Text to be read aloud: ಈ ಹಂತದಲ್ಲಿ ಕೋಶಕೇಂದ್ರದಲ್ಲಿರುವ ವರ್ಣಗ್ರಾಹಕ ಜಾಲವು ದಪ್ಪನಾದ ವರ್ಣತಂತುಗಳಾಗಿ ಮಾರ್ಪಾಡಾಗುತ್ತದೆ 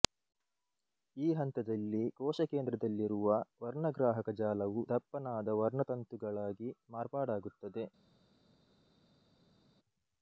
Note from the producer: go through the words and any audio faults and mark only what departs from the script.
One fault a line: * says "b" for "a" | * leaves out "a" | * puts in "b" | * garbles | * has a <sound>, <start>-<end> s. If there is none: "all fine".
all fine